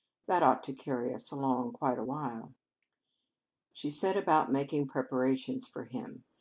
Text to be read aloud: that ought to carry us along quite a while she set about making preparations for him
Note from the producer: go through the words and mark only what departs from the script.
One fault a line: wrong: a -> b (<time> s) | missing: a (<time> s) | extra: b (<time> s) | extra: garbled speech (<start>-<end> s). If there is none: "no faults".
no faults